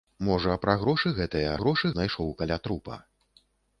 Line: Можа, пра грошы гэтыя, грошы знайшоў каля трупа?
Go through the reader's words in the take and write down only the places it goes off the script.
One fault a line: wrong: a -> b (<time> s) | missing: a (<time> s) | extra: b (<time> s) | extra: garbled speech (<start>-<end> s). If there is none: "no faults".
no faults